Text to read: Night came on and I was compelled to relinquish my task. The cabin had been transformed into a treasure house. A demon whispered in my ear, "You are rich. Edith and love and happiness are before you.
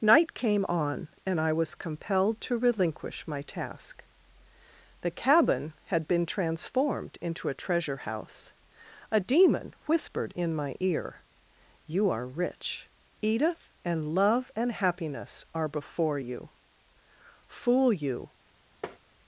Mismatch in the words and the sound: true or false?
true